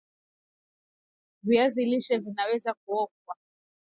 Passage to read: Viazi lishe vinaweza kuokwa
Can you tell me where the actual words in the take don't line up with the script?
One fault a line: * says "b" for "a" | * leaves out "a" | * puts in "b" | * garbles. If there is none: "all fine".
all fine